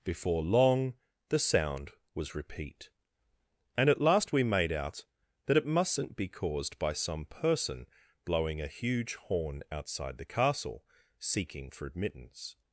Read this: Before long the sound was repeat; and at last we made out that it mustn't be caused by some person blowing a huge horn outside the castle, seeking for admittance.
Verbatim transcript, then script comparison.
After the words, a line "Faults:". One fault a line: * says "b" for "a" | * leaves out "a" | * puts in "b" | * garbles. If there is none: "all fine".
Before long the sound was repeat; and at last we made out that it mustn't be caused by some person blowing a huge horn outside the castle, seeking for admittance.
Faults:
all fine